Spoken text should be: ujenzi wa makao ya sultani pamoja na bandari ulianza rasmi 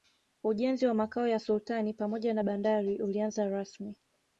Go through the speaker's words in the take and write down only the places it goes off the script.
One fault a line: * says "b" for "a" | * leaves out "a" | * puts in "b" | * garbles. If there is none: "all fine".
all fine